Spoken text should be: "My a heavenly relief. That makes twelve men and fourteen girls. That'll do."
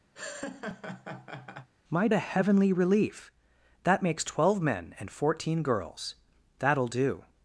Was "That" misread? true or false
false